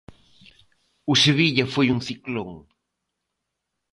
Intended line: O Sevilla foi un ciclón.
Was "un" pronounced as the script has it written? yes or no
yes